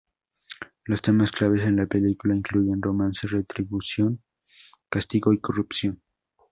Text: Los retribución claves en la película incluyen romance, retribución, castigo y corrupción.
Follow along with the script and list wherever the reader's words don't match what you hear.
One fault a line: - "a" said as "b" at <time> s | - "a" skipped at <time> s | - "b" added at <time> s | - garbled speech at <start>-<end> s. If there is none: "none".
- "retribución" said as "temas" at 1.0 s